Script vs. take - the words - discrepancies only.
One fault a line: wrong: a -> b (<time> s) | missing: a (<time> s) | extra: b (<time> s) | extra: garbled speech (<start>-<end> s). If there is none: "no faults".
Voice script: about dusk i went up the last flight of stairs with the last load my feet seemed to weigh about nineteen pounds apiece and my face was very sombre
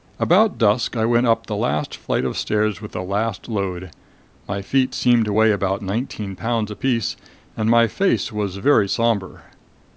no faults